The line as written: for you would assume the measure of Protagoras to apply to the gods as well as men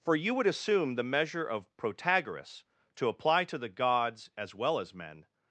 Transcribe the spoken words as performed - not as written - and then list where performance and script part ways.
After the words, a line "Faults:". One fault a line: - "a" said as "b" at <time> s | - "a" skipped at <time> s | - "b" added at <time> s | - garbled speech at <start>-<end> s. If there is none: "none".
for you would assume the measure of Protagoras to apply to the gods as well as men
Faults:
none